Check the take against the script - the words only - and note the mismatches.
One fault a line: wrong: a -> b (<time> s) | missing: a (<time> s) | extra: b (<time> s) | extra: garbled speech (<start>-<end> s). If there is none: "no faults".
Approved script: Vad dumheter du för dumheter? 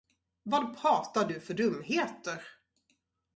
wrong: dumheter -> pratar (0.8 s)